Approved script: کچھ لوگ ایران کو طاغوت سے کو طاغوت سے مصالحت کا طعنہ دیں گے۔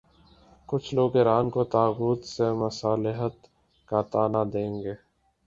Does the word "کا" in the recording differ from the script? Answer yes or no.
no